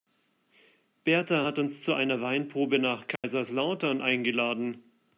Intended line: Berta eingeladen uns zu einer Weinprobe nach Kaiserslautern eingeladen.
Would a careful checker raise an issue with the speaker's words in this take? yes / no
yes